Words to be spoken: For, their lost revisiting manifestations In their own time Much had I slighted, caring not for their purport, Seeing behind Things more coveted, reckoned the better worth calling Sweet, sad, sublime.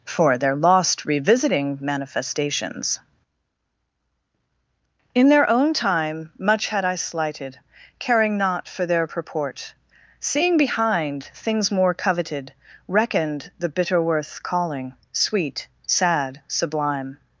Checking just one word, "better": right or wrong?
wrong